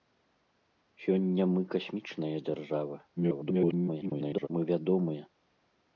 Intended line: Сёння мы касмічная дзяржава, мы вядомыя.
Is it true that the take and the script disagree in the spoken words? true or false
true